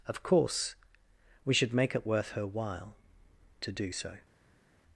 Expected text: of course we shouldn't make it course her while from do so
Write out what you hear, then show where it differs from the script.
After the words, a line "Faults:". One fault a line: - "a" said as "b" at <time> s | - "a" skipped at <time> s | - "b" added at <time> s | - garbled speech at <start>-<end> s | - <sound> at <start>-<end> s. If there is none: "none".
of course we should make it worth her while to do so
Faults:
- "shouldn't" said as "should" at 1.5 s
- "course" said as "worth" at 2.0 s
- "from" said as "to" at 3.6 s